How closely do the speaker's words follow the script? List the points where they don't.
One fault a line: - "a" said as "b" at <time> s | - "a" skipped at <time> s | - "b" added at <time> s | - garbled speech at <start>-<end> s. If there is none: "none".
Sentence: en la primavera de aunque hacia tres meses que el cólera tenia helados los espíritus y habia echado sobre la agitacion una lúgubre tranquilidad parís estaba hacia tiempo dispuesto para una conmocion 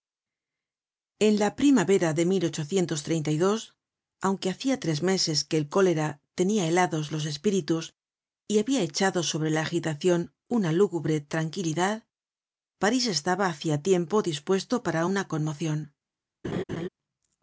none